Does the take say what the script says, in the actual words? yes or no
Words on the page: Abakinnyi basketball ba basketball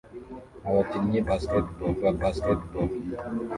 yes